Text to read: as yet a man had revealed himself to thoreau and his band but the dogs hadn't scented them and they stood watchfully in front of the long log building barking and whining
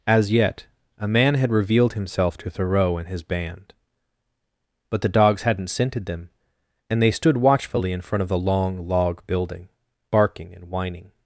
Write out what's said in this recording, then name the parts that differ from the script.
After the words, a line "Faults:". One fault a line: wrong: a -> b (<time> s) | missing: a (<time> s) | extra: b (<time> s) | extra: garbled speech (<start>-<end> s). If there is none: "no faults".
as yet a man had revealed himself to thoreau and his band but the dogs hadn't scented them and they stood watchfully in front of the long log building barking and whining
Faults:
no faults